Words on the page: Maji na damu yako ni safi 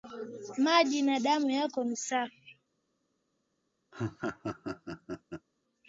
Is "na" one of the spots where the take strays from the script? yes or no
no